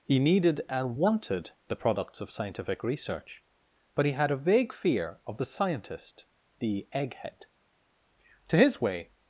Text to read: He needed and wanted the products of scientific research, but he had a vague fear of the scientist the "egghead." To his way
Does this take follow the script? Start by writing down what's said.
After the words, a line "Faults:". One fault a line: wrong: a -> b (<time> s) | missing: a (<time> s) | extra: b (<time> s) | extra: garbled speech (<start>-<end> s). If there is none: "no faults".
He needed and wanted the products of scientific research, but he had a vague fear of the scientist the "egghead." To his way
Faults:
no faults